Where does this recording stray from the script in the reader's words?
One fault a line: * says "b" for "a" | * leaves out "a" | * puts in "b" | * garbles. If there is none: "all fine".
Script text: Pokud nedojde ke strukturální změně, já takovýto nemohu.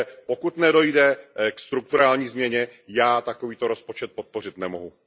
* puts in "rozpočet podpořit"